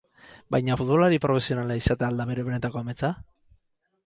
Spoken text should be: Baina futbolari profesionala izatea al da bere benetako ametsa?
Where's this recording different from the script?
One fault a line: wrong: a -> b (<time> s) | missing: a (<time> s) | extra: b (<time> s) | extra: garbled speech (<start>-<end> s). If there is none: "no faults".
no faults